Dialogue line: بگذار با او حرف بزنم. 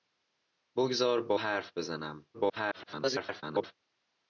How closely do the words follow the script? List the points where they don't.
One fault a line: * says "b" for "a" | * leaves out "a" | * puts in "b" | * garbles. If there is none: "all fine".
* leaves out "او"
* garbles